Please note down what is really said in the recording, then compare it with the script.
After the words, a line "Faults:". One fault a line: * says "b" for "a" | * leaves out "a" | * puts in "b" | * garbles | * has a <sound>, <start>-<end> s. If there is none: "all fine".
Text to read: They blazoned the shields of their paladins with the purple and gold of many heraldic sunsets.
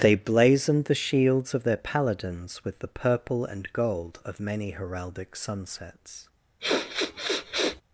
They blazoned the shields of their paladins with the purple and gold of many heraldic sunsets.
Faults:
* has a sniff, 6.6-7.8 s